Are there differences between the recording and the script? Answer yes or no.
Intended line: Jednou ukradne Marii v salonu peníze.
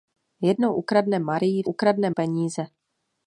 yes